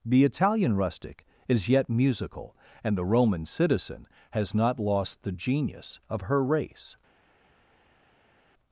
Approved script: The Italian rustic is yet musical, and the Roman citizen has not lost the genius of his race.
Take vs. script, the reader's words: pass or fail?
fail